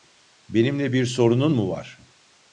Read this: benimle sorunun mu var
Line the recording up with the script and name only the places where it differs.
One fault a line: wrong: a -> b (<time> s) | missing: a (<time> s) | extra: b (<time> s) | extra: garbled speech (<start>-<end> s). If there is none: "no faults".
extra: bir (0.9 s)